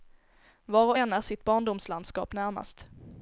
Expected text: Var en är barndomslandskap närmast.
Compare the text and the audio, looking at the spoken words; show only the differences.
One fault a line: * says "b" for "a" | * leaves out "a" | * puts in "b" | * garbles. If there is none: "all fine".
* puts in "och"
* puts in "sitt"